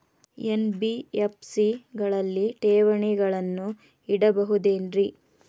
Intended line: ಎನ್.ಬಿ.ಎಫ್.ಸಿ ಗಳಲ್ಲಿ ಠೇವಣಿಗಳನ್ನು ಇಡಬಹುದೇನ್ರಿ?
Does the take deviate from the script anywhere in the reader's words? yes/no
no